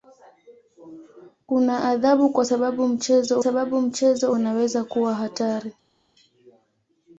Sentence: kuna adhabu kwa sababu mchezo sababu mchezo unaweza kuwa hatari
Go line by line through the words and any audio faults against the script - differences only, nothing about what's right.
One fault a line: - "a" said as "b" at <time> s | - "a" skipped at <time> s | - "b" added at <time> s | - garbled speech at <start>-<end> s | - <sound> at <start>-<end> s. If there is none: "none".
none